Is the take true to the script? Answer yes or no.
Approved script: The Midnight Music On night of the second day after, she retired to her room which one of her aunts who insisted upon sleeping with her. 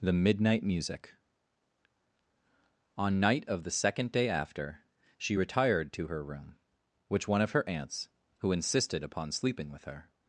yes